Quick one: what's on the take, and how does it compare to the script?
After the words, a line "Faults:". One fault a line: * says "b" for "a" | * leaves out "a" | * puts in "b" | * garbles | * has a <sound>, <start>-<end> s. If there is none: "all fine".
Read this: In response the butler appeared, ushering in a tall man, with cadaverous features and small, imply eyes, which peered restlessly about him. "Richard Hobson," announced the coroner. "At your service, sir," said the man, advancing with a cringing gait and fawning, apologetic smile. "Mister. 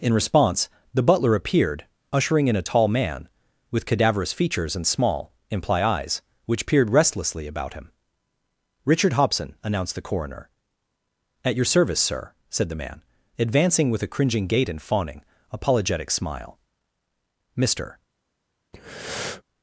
In response the butler appeared, ushering in a tall man, with cadaverous features and small, imply eyes, which peered restlessly about him. "Richard Hobson," announced the coroner. "At your service, sir," said the man, advancing with a cringing gait and fawning, apologetic smile. "Mister.
Faults:
* has a breath, 18.7-19.4 s